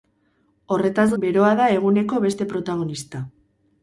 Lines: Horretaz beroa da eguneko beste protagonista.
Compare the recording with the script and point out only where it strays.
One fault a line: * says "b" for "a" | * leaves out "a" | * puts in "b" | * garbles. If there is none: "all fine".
all fine